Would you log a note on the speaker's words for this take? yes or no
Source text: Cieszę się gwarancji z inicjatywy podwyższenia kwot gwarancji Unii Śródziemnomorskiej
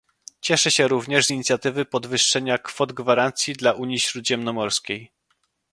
yes